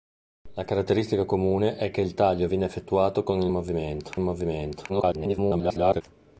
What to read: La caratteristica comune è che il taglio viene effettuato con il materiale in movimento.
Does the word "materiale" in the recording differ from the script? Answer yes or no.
yes